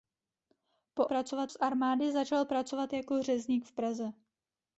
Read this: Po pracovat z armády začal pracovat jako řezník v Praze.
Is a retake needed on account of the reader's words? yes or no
no